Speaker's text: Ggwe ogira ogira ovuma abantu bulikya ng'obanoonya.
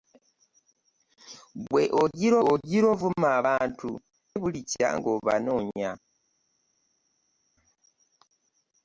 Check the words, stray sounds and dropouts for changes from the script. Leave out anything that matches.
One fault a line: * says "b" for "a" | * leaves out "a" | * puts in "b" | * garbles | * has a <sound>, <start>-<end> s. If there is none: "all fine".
all fine